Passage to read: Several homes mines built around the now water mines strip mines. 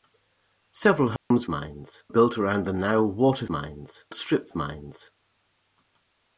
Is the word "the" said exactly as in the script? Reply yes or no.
yes